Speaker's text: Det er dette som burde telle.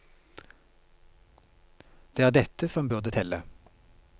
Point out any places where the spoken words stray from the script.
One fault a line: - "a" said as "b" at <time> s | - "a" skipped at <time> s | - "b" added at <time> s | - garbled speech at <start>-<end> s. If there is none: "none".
none